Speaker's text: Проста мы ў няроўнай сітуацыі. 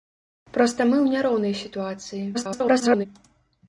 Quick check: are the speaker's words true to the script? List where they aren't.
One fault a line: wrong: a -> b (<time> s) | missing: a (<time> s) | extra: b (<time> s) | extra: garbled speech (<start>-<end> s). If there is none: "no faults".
extra: garbled speech (2.3-3.1 s)